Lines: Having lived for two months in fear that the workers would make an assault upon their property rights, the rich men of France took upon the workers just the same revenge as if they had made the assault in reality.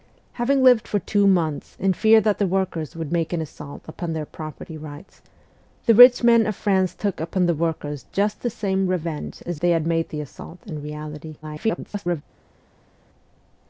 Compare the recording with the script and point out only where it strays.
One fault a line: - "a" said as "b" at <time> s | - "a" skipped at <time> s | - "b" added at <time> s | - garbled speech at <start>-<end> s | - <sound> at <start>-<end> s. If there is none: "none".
- "if" skipped at 9.6 s
- garbled speech at 11.4-12.2 s